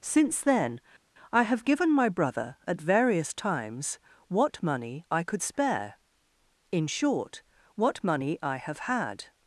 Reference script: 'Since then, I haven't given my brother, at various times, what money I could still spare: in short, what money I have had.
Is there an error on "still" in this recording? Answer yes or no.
yes